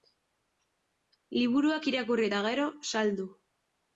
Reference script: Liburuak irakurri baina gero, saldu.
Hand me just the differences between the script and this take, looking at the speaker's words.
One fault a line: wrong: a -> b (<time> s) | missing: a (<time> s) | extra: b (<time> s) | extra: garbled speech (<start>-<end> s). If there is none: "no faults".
wrong: baina -> eta (2.3 s)